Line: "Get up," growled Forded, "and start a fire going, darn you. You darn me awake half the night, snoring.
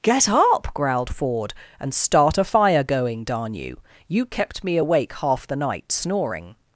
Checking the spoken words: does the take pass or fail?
fail